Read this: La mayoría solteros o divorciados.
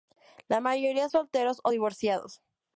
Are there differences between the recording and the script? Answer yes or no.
no